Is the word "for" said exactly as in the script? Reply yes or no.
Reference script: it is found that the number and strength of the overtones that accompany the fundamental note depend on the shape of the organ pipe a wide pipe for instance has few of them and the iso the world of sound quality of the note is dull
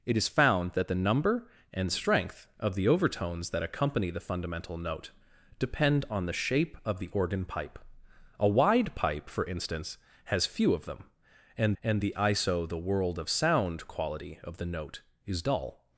yes